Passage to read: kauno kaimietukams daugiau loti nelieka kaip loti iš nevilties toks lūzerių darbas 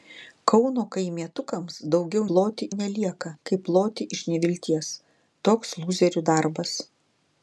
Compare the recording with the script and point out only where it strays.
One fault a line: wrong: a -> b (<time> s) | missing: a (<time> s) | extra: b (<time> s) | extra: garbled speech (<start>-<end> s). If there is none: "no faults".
no faults